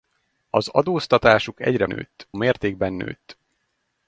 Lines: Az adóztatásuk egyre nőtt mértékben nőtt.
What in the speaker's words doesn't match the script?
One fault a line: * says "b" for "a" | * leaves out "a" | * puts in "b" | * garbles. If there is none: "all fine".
all fine